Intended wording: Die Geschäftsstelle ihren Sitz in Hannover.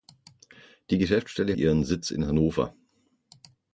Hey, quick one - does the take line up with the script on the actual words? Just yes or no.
yes